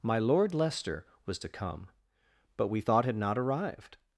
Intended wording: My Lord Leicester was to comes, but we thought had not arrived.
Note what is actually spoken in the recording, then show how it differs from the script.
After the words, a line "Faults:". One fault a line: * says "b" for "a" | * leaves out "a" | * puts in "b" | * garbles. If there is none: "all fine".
My Lord Leicester was to come, but we thought had not arrived.
Faults:
* says "come" for "comes"